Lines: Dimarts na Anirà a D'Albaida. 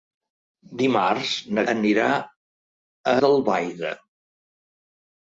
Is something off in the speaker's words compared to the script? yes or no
no